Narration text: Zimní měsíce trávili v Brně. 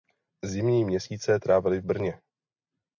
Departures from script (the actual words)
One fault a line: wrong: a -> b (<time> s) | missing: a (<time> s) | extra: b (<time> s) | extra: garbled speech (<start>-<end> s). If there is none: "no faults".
no faults